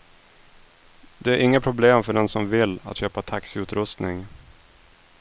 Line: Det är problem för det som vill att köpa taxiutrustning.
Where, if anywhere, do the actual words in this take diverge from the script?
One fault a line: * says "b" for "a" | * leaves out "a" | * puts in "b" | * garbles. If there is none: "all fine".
* puts in "inga"
* says "den" for "det"